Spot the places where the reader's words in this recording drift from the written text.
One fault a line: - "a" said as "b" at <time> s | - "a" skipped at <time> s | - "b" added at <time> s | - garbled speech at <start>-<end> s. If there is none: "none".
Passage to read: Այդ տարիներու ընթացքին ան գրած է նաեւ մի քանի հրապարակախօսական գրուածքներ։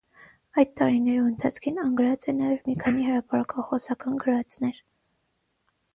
none